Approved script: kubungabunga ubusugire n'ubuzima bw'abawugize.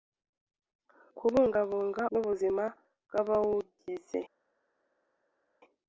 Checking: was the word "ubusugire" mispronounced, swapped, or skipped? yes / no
yes